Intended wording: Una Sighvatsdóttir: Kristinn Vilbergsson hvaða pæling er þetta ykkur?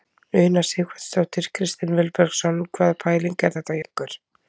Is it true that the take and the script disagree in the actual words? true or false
false